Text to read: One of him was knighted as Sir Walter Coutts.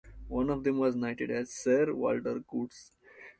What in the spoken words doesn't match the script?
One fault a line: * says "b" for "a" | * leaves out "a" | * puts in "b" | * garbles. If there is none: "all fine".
* says "them" for "him"